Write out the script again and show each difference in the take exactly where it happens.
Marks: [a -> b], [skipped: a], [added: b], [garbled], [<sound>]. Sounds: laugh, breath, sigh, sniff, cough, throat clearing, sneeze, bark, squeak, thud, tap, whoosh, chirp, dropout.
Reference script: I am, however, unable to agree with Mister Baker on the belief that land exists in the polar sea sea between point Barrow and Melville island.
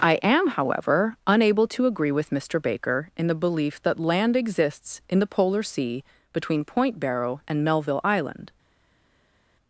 I am, however, unable to agree with Mister Baker [on -> in] the belief that land exists in the polar sea [skipped: sea] between point Barrow and Melville island.